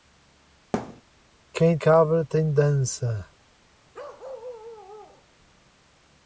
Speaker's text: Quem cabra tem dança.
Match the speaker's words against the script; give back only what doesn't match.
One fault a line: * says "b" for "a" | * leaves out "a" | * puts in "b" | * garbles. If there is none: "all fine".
all fine